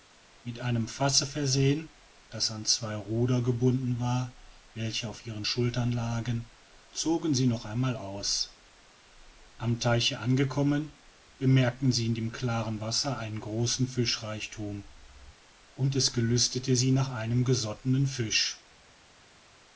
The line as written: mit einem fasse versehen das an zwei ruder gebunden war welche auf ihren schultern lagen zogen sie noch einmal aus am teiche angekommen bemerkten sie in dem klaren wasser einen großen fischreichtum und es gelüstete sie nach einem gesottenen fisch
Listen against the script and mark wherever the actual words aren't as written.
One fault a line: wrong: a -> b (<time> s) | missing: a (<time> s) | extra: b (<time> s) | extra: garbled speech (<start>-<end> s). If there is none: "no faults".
no faults